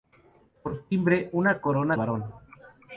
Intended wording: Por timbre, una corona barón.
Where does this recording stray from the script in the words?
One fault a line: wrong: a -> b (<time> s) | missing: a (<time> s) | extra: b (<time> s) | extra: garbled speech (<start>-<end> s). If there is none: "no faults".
no faults